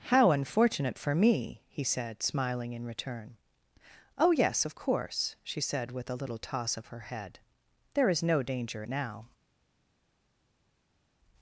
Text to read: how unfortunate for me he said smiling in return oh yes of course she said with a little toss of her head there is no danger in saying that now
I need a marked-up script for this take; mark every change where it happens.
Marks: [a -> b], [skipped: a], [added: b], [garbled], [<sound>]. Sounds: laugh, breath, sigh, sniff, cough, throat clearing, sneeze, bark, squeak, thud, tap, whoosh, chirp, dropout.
how unfortunate for me he said smiling in return oh yes of course she said with a little toss of her head there is no danger [skipped: in saying that] now